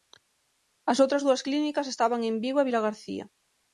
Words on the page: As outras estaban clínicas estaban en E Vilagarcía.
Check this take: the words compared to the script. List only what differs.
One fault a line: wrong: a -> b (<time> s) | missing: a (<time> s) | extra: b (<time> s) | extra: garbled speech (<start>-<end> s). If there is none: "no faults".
wrong: estaban -> dúas (1.2 s)
extra: Vigo (2.4 s)